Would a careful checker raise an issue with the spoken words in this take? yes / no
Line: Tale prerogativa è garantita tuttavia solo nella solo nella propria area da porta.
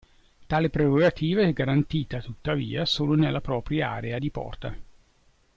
yes